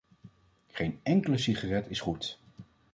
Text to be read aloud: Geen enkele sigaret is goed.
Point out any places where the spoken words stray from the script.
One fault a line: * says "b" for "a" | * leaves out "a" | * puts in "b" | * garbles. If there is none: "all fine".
all fine